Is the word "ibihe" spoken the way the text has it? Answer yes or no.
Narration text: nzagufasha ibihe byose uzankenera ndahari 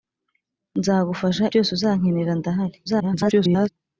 no